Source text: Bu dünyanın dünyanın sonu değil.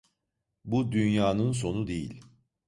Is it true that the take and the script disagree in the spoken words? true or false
true